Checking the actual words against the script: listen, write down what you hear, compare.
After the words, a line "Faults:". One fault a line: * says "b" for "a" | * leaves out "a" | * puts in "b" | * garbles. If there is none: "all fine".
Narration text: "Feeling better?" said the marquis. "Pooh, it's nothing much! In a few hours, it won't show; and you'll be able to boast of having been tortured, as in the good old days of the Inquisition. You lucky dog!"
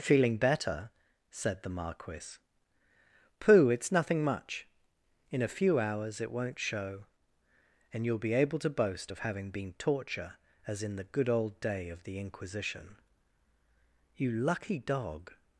"Feeling better?" said the marquis. "Pooh, it's nothing much! In a few hours, it won't show; and you'll be able to boast of having been torture, as in the good old day of the Inquisition. You lucky dog!"
Faults:
* says "torture" for "tortured"
* says "day" for "days"